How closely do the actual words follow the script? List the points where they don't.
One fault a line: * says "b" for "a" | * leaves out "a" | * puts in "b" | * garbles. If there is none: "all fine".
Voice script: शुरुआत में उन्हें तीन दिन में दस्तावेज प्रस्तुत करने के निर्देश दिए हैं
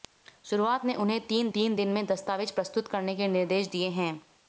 * puts in "तीन"